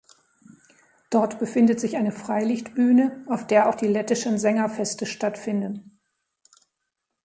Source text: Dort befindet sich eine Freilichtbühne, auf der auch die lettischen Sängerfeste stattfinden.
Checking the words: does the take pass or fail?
pass